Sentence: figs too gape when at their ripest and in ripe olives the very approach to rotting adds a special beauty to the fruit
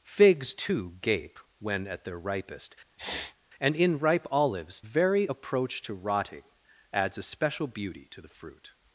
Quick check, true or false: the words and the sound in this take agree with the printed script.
false